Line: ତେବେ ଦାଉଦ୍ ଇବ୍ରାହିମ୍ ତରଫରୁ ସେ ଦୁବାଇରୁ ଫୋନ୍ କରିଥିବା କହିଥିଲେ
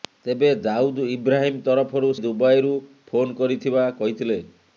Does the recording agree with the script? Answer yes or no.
no